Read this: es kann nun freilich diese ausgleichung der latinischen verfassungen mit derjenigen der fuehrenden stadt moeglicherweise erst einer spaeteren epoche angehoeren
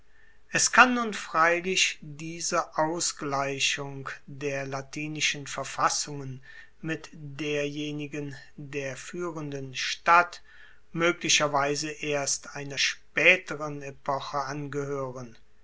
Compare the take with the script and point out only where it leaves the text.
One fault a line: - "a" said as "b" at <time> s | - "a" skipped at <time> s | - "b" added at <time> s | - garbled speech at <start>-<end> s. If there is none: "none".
none